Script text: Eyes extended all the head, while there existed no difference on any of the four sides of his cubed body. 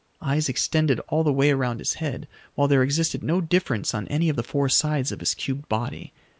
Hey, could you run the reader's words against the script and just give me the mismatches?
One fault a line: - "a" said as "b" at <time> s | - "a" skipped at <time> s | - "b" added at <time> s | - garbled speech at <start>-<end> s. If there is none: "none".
- "way around his" added at 1.3 s